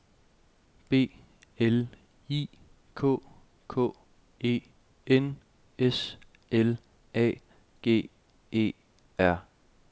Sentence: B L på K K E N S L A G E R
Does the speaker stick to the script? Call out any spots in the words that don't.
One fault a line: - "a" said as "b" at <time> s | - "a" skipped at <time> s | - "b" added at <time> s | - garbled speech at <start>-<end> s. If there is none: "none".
- "på" said as "I" at 2.3 s